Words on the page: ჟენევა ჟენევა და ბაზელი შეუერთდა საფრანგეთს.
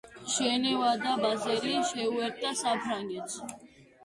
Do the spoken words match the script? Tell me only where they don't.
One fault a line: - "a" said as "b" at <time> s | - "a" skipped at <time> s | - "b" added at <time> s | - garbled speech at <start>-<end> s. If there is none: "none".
- "ჟენევა" skipped at 0.9 s